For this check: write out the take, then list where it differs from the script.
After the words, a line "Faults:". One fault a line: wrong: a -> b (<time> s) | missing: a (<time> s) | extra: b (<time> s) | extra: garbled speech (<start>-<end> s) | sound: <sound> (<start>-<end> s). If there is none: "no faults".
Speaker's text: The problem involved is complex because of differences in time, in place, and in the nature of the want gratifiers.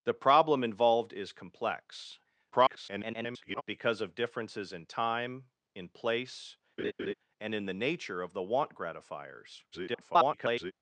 The problem involved is complex [garbled] because of differences in time, in place, and in the nature of the want gratifiers. [garbled]
Faults:
extra: garbled speech (2.5-3.6 s)
sound: laugh (6.8-7.1 s)
extra: garbled speech (9.7-10.7 s)